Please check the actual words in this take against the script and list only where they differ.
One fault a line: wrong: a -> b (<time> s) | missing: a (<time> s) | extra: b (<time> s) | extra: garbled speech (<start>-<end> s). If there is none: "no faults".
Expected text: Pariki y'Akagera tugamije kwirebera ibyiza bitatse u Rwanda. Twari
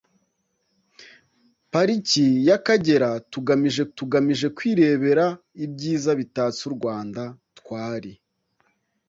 extra: tugamije (4.0 s)